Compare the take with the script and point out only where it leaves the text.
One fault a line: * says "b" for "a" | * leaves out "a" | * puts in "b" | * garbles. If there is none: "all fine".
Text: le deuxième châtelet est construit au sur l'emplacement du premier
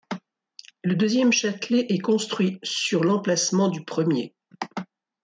* leaves out "au"